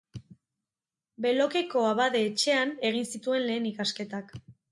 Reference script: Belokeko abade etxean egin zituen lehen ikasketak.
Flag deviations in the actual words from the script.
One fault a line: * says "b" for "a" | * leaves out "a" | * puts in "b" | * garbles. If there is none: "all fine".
all fine